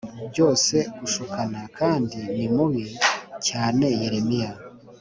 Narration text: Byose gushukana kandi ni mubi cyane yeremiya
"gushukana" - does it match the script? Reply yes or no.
yes